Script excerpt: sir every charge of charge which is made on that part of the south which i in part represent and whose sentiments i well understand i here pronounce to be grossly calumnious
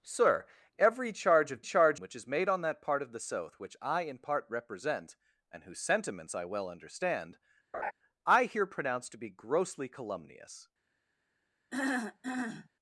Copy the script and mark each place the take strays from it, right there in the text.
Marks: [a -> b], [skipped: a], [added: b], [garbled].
sir every charge of charge which is made on that part of the south which i in part represent and whose sentiments i well understand i here pronounce to be grossly calumnious